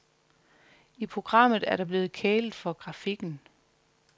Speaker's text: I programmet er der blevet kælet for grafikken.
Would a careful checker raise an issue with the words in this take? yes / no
no